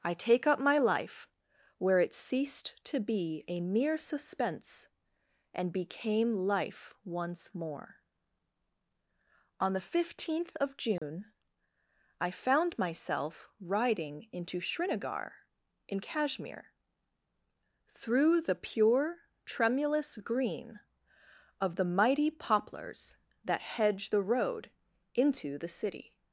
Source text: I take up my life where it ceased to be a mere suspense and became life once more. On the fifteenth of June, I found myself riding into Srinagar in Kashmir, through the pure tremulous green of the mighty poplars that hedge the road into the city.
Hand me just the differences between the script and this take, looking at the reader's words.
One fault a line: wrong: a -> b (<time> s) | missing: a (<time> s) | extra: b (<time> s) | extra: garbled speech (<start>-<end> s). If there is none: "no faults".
no faults